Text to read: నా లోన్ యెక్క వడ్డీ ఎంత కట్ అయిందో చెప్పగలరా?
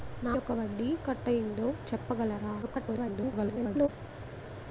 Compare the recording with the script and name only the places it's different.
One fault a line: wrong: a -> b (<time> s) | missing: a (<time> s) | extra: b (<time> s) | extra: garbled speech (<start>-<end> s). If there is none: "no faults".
missing: లోన్ (0.3 s)
missing: ఎంత (0.9 s)
extra: garbled speech (2.6-3.9 s)